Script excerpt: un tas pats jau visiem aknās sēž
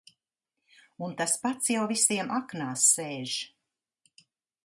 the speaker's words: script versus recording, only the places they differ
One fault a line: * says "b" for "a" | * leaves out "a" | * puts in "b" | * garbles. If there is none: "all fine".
all fine